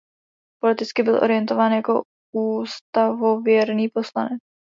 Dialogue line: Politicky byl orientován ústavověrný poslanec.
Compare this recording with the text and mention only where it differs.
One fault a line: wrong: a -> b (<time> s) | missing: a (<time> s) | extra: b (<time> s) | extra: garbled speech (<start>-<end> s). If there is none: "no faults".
extra: jako (1.7 s)